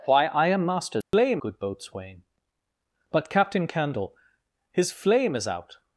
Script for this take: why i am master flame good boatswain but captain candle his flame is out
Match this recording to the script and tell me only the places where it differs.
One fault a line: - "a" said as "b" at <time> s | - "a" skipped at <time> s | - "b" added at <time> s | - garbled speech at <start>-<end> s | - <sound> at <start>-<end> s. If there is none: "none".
- dropout at 1.0-1.1 s